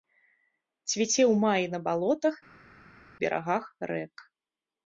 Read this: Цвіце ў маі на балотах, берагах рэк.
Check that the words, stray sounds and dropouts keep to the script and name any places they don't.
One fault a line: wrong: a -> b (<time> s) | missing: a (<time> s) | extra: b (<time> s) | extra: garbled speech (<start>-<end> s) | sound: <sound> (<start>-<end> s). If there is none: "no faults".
no faults